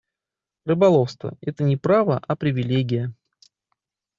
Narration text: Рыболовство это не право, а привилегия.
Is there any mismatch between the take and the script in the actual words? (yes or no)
no